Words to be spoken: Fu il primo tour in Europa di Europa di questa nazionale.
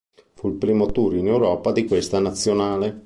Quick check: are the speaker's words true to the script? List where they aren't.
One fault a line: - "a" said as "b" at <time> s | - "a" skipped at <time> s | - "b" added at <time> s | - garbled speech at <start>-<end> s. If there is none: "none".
- "Europa di" skipped at 1.9 s